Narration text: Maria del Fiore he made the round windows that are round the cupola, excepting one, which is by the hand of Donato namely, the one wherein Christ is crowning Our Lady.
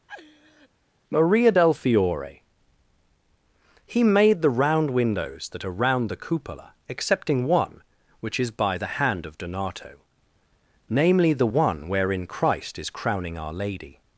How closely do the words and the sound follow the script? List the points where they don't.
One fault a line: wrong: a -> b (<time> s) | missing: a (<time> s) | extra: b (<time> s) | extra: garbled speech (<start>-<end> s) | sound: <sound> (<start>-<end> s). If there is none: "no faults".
sound: laugh (0.1-0.7 s)